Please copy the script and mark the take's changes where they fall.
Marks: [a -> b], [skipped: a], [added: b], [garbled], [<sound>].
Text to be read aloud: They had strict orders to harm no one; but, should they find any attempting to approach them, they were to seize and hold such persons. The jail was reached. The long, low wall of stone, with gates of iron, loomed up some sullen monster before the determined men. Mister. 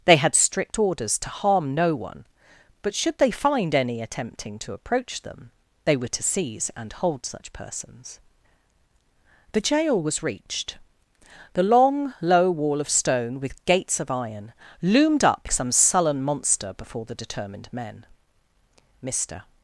They had strict orders to harm no one; but, should they find any attempting to approach them, they were to seize and hold such persons. The jail was reached. The long, low wall of stone, with gates of iron, loomed up some sullen monster before the determined men. Mister.